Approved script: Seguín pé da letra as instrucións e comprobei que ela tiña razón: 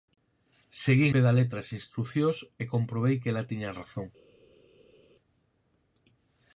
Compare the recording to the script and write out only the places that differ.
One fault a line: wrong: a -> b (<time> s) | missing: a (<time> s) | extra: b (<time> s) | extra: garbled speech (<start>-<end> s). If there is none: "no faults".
no faults